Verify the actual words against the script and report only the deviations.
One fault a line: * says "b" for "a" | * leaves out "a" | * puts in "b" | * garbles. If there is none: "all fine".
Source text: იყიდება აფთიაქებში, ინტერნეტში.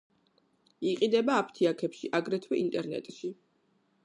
* puts in "აგრეთვე"